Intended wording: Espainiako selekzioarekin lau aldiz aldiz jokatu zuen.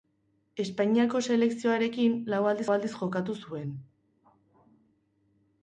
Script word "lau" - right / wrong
right